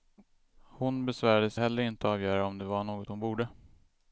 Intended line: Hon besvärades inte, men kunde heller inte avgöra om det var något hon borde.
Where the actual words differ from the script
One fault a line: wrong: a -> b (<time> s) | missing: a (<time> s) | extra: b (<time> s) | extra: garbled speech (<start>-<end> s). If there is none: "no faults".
missing: inte men kunde (1.6 s)